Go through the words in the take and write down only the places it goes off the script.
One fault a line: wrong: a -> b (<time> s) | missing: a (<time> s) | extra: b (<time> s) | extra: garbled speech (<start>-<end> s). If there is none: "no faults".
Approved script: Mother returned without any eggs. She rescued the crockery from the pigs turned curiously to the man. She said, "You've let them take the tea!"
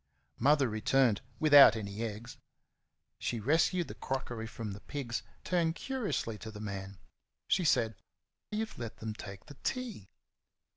no faults